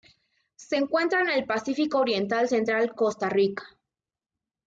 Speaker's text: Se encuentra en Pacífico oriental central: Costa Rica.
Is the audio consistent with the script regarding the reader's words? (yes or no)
no